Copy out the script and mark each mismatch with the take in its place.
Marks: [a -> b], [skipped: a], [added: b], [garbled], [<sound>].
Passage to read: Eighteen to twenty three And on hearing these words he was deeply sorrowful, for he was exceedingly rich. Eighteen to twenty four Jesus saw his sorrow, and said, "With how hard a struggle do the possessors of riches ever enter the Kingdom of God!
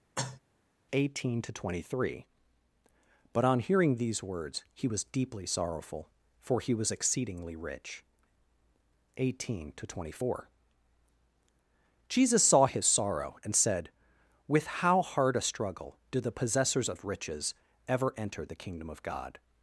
[cough] Eighteen to twenty three [And -> But] on hearing these words he was deeply sorrowful, for he was exceedingly rich. Eighteen to twenty four Jesus saw his sorrow, and said, "With how hard a struggle do the possessors of riches ever enter the Kingdom of God!